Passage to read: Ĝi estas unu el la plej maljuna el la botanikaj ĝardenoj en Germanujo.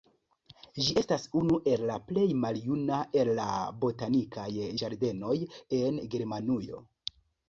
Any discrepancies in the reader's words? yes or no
no